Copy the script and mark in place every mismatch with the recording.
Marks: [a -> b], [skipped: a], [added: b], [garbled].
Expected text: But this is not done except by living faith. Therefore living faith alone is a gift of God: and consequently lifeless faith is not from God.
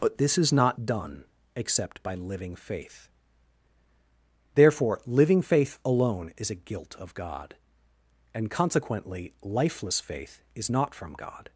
But this is not done except by living faith. Therefore living faith alone is a [gift -> gilt] of God: and consequently lifeless faith is not from God.